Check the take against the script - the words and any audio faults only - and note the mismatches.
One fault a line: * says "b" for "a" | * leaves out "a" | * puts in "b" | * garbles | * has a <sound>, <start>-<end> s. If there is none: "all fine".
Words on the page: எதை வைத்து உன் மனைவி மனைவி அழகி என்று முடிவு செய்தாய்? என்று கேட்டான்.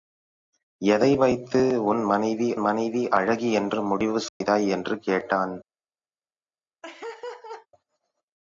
* has a dropout, 4.3-4.4 s
* has a laugh, 6.8-7.7 s